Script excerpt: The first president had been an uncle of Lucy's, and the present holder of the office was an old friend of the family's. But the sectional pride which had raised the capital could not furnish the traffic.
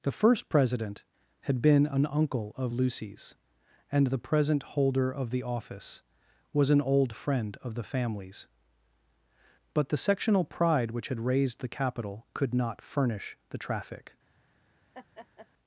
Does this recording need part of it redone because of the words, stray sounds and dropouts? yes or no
yes